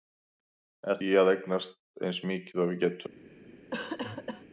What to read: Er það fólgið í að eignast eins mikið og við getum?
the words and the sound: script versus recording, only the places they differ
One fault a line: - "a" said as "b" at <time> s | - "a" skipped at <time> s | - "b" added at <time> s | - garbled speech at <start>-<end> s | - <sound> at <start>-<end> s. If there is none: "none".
- "það fólgið" skipped at 1.0 s
- cough at 3.7-4.4 s